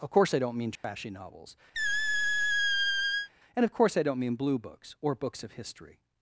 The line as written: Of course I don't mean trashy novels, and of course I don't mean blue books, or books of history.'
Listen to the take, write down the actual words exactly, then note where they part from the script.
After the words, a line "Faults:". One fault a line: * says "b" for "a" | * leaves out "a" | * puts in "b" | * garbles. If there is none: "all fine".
Of course I don't mean trashy novels, and of course I don't mean blue books, or books of history.'
Faults:
all fine